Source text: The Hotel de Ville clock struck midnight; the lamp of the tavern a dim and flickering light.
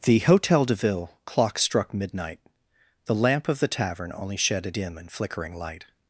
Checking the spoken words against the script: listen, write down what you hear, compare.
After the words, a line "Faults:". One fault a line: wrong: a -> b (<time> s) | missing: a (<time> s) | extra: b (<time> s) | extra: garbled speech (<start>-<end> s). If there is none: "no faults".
The Hotel de Ville clock struck midnight; the lamp of the tavern only shed a dim and flickering light.
Faults:
extra: only shed (4.2 s)